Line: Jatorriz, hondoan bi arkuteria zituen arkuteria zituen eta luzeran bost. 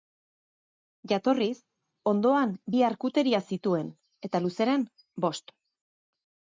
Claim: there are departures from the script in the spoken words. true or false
true